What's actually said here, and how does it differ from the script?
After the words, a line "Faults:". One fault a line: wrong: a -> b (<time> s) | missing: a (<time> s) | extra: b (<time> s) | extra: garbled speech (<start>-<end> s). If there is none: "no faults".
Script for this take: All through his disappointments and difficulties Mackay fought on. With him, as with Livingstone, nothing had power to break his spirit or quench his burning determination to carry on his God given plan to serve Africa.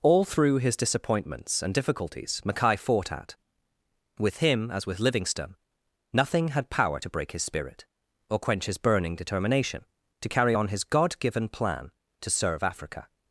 All through his disappointments and difficulties Mackay fought at. With him, as with Livingstone, nothing had power to break his spirit or quench his burning determination to carry on his God given plan to serve Africa.
Faults:
wrong: on -> at (3.1 s)